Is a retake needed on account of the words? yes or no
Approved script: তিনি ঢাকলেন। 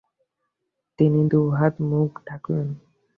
yes